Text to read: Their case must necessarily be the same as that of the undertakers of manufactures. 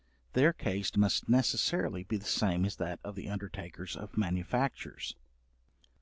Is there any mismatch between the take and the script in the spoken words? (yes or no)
no